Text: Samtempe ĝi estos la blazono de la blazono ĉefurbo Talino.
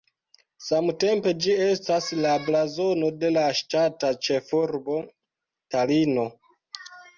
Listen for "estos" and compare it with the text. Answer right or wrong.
wrong